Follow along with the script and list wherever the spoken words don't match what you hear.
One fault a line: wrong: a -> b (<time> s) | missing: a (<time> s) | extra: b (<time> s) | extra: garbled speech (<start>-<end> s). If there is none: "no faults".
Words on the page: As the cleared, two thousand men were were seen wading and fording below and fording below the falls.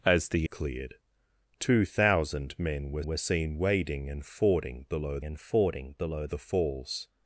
no faults